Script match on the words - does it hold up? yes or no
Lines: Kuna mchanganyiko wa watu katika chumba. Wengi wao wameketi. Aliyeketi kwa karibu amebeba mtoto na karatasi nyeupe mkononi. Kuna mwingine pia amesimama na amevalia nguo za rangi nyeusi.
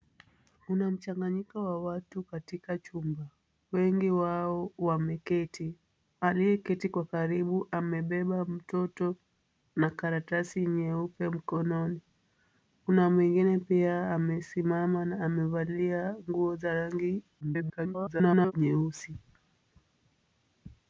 no